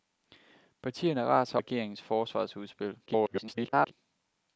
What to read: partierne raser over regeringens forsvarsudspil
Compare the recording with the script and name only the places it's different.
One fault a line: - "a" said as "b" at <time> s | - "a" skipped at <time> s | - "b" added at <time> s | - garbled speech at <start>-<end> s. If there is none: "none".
- "over" skipped at 1.6 s
- garbled speech at 3.1-3.9 s